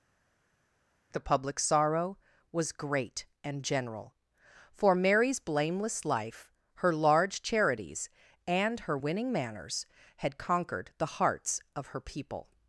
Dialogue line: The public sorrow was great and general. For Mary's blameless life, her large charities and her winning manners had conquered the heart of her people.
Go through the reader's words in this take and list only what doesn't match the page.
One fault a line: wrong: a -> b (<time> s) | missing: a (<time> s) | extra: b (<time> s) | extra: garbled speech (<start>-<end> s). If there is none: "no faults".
wrong: heart -> hearts (11.2 s)